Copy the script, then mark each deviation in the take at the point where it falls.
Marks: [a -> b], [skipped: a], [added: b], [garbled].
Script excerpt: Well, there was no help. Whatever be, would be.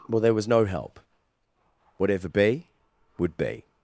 Well, there was no help. Whatever be, would be.